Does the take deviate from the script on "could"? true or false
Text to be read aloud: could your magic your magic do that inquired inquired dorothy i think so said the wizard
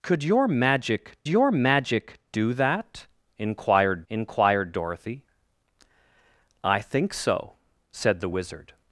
false